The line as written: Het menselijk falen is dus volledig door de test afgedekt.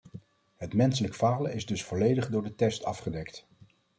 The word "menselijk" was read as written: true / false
true